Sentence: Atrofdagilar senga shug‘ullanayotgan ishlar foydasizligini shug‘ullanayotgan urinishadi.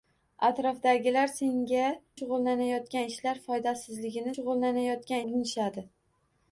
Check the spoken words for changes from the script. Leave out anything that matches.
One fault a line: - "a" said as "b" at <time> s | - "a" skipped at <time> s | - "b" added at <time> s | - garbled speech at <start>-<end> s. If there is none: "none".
none